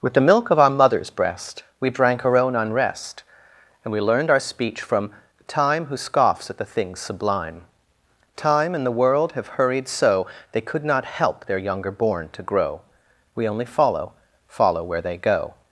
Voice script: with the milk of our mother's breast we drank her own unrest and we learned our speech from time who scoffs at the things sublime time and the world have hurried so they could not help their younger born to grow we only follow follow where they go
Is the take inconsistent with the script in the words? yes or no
no